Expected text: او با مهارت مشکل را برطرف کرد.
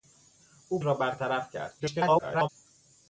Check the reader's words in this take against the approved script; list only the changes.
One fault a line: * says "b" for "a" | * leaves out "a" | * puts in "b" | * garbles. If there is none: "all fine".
* leaves out "با مهارت مشکل"
* garbles